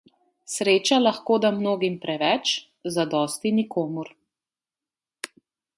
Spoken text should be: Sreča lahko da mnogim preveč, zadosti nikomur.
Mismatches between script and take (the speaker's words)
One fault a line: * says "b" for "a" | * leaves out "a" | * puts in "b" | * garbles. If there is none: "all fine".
all fine